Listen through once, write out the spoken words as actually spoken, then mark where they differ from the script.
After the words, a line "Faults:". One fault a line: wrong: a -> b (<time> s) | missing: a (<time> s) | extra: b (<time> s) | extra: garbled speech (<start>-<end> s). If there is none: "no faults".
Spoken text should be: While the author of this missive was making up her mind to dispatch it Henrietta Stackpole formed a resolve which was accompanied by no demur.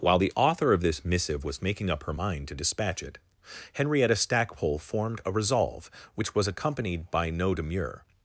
While the author of this missive was making up her mind to dispatch it Henrietta Stackpole formed a resolve which was accompanied by no demur.
Faults:
no faults